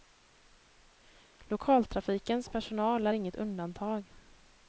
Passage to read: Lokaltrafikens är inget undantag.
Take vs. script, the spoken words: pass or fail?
fail